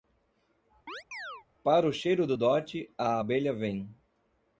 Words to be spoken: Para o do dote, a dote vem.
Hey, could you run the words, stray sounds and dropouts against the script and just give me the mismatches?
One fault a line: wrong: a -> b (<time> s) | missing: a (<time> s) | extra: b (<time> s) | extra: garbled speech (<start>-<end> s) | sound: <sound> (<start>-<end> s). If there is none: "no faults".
sound: chirp (0.9-1.5 s)
extra: cheiro (1.9 s)
wrong: dote -> abelha (3.2 s)